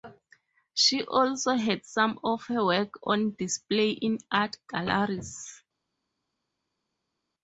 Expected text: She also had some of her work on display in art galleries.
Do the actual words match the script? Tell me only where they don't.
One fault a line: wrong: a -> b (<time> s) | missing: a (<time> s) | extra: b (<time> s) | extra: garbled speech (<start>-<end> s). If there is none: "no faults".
no faults